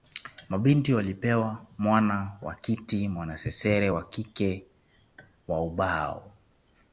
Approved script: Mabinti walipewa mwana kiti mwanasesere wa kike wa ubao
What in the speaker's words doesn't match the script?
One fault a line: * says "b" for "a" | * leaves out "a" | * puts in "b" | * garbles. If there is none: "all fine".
* puts in "wa"